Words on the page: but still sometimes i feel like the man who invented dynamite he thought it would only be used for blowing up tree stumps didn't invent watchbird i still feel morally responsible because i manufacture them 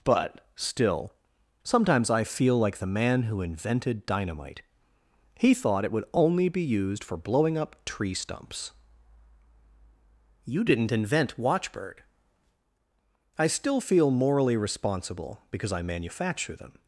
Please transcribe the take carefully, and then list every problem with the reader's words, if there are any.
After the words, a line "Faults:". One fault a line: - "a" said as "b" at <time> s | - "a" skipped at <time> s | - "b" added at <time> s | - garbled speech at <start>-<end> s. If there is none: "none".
but still sometimes i feel like the man who invented dynamite he thought it would only be used for blowing up tree stumps you didn't invent watchbird i still feel morally responsible because i manufacture them
Faults:
- "you" added at 10.4 s